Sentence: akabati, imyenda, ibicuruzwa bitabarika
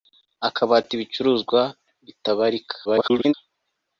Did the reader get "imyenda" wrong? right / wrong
wrong